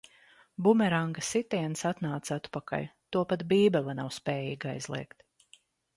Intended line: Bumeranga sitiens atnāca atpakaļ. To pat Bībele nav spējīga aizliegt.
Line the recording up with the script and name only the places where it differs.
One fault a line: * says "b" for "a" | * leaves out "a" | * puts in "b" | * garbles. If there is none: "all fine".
all fine